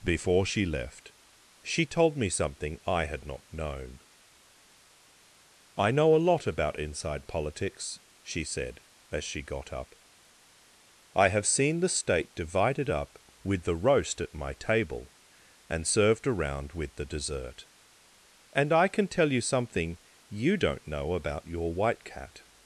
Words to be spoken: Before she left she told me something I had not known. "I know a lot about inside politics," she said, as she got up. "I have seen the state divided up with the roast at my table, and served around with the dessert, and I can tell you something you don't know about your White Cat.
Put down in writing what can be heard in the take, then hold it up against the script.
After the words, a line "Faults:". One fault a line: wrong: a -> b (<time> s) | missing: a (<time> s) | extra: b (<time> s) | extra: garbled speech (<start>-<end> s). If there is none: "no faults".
Before she left she told me something I had not known. "I know a lot about inside politics," she said, as she got up. "I have seen the state divided up with the roast at my table, and served around with the dessert, and I can tell you something you don't know about your White Cat.
Faults:
no faults